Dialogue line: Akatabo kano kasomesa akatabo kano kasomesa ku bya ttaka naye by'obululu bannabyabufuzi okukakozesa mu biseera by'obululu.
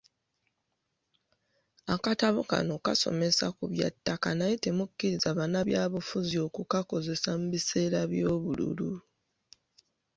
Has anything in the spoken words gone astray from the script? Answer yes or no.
yes